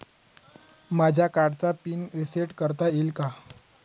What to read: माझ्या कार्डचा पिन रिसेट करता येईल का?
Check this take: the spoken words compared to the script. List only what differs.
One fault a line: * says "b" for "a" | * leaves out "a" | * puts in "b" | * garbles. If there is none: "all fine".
all fine